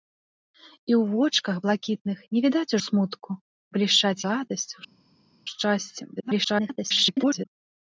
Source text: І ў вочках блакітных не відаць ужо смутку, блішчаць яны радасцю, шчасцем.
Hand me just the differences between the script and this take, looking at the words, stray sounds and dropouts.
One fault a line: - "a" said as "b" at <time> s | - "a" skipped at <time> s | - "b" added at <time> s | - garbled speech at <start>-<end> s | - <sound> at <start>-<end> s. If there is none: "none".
- "ужо" skipped at 2.7 s
- "яны" skipped at 4.2 s
- garbled speech at 6.2-7.5 s